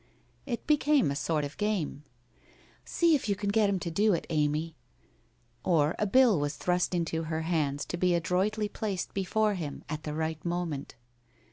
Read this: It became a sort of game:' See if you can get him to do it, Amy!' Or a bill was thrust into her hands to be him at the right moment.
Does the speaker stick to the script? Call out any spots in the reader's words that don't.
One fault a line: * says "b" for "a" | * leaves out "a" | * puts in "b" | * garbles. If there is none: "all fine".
* puts in "adroitly placed before"